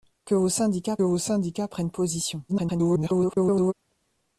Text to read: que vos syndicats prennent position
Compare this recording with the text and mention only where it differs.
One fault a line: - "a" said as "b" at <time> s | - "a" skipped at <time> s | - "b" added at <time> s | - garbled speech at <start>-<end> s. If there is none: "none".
- "vos syndicats" added at 1.0 s
- garbled speech at 2.5-3.7 s